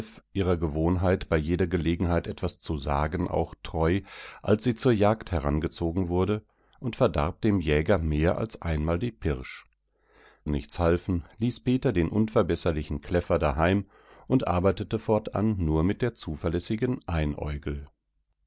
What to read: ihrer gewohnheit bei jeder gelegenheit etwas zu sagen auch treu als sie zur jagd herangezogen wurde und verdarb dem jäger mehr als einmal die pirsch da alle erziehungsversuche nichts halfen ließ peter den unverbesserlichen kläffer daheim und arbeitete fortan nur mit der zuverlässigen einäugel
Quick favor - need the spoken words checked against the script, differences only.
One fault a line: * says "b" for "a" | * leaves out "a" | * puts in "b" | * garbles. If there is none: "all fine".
* leaves out "da alle erziehungsversuche"